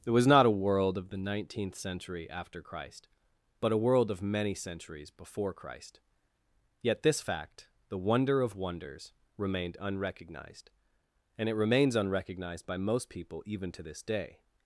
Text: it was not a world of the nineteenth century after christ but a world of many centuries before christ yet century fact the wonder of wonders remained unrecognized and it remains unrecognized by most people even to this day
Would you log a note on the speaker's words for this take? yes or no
yes